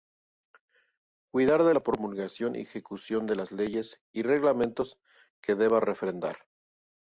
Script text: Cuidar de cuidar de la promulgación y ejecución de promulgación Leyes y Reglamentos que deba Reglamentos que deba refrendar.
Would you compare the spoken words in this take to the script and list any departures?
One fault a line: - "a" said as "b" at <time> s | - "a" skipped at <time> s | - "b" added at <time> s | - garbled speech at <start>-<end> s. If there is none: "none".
- "cuidar de" skipped at 1.8 s
- "promulgación" said as "las" at 3.3 s
- "Reglamentos que deba" skipped at 5.8 s